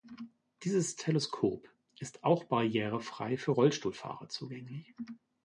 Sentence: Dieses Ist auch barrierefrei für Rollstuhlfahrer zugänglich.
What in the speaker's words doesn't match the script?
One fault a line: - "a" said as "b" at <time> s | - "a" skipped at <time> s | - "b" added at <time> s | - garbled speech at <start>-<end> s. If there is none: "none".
- "Teleskop" added at 0.9 s